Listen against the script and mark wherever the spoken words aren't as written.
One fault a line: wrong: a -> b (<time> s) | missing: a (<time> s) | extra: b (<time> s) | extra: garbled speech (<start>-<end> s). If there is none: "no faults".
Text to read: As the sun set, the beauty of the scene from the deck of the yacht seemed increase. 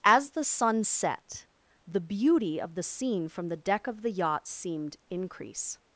no faults